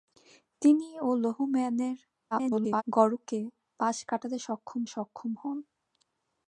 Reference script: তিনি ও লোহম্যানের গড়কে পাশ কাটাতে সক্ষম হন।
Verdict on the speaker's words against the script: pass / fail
fail